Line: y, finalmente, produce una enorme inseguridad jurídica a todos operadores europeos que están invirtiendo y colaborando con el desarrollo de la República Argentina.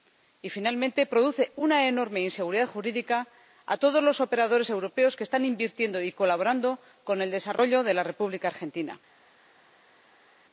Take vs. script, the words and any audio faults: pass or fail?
fail